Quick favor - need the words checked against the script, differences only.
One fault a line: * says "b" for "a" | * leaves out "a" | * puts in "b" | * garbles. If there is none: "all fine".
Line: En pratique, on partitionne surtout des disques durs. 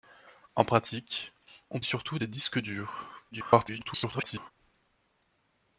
* leaves out "partitionne"
* garbles